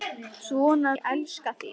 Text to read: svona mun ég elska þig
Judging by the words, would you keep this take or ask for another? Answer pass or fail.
fail